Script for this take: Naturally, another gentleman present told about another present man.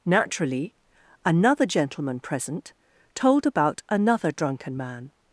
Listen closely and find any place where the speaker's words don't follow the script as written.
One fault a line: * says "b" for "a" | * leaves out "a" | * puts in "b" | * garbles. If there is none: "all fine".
* says "drunken" for "present"